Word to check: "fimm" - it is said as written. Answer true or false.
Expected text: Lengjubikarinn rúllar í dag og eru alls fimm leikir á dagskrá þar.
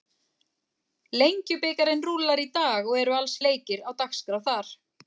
false